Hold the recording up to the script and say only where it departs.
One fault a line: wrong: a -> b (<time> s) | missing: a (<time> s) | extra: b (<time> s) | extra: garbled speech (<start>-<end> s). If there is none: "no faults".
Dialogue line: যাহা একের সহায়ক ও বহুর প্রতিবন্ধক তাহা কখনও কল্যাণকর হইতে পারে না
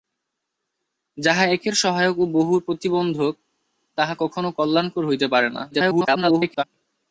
extra: garbled speech (5.7-6.6 s)